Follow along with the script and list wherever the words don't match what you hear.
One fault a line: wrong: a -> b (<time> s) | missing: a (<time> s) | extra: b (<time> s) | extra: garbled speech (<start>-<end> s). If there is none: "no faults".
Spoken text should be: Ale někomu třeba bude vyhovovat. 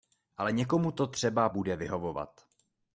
extra: to (0.9 s)